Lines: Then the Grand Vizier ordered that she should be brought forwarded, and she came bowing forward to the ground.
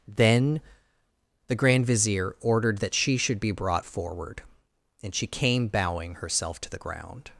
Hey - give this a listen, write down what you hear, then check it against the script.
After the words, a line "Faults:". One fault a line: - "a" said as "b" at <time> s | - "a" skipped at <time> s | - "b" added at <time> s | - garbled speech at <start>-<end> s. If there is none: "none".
Then the Grand Vizier ordered that she should be brought forward, and she came bowing herself to the ground.
Faults:
- "forwarded" said as "forward" at 3.8 s
- "forward" said as "herself" at 6.2 s